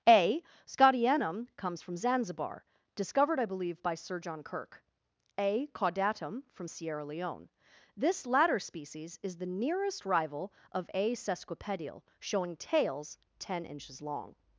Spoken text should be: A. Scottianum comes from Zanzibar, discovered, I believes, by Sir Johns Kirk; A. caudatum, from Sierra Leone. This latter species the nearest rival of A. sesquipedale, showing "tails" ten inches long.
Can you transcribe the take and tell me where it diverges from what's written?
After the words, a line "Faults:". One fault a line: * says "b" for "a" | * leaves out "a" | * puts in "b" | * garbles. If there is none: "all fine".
A. Scottianum comes from Zanzibar, discovered, I believe, by Sir John Kirk; A. caudatum, from Sierra Leone. This latter species is the nearest rival of A. sesquipedale, showing "tails" ten inches long.
Faults:
* says "believe" for "believes"
* says "John" for "Johns"
* puts in "is"